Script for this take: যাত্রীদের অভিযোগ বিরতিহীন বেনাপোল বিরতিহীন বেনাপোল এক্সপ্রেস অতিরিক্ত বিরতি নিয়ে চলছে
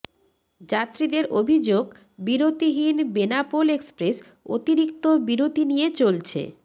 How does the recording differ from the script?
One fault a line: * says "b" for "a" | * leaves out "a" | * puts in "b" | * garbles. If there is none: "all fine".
* leaves out "বিরতিহীন বেনাপোল"